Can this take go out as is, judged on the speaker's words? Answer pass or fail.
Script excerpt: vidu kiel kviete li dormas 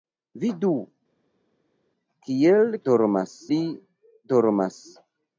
fail